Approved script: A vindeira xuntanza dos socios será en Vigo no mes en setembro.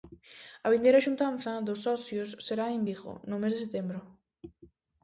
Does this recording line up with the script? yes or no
no